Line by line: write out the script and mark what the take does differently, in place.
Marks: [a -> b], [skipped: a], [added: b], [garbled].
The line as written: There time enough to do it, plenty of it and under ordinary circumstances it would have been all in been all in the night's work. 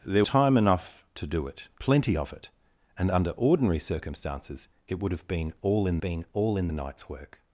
There time enough to do it, plenty of it and under ordinary circumstances it would have been all in been all in the night's work.